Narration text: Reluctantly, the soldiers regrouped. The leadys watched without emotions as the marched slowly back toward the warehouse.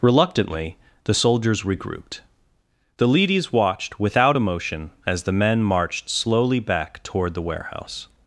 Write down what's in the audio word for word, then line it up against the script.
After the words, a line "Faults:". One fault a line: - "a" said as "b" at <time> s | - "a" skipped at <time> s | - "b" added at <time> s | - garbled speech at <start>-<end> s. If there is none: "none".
Reluctantly, the soldiers regrouped. The leadys watched without emotion as the men marched slowly back toward the warehouse.
Faults:
- "emotions" said as "emotion" at 4.4 s
- "men" added at 5.3 s